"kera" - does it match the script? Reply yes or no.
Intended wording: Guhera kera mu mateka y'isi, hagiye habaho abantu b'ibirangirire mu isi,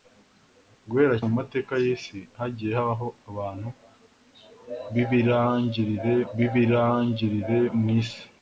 no